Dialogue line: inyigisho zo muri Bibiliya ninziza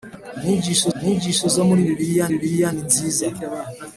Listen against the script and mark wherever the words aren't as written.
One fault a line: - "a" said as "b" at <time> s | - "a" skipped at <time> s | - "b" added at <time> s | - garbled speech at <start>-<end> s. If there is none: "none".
- "inyigisho" added at 1.0 s
- "Bibiliya" added at 2.3 s